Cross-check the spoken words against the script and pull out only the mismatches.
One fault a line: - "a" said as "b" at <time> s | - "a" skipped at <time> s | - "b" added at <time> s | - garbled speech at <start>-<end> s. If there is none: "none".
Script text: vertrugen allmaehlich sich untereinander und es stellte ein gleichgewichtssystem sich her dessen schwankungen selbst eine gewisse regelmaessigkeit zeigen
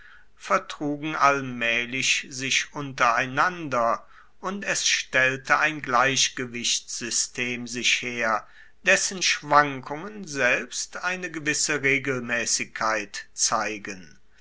none